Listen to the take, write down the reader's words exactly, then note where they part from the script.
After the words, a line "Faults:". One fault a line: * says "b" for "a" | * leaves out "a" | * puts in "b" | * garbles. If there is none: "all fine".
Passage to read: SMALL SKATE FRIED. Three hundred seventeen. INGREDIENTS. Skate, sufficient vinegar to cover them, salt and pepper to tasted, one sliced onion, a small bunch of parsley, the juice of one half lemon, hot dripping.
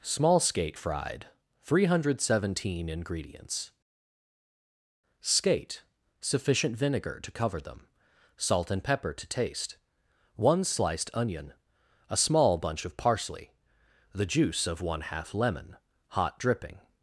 SMALL SKATE FRIED. Three hundred seventeen. INGREDIENTS. Skate, sufficient vinegar to cover them, salt and pepper to taste, one sliced onion, a small bunch of parsley, the juice of one half lemon, hot dripping.
Faults:
* says "taste" for "tasted"